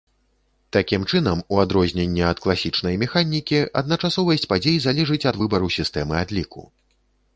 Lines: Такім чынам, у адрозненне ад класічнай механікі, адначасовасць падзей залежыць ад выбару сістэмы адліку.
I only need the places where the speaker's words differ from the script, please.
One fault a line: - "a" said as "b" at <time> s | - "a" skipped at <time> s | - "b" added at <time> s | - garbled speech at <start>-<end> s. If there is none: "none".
none